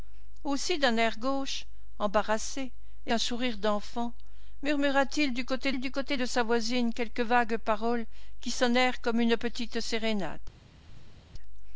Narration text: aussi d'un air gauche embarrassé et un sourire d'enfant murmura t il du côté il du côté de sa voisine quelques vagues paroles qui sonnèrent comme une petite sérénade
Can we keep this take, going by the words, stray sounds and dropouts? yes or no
no